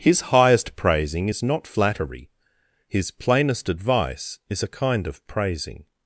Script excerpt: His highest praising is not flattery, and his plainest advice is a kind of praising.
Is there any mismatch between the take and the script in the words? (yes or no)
yes